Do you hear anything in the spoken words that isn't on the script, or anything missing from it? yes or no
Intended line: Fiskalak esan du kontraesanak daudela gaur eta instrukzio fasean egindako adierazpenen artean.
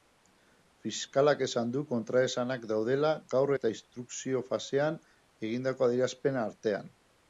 no